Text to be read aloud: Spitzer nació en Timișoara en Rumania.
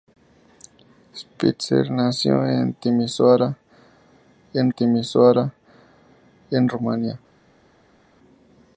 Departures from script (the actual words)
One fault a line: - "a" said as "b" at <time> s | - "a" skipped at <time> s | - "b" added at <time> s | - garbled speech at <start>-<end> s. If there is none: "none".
- "Timișoara en" added at 4.7 s